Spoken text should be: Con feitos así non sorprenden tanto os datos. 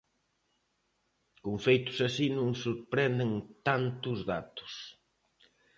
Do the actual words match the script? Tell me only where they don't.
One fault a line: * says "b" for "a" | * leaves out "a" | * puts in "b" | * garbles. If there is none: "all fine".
all fine